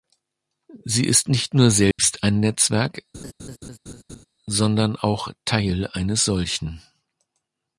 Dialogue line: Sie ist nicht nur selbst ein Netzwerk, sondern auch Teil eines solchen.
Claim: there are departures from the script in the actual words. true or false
false